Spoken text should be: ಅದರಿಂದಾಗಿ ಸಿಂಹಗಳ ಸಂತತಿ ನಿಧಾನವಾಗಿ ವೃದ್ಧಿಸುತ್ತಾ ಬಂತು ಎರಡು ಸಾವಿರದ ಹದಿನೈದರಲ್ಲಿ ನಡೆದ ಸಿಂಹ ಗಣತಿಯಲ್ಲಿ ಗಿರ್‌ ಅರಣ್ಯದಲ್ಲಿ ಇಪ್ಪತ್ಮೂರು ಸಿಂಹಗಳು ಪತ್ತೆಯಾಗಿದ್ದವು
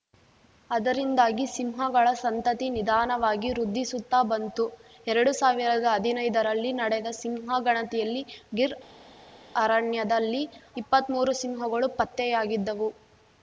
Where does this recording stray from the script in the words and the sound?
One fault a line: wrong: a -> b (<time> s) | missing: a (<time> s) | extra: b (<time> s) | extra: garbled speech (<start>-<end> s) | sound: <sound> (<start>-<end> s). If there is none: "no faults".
no faults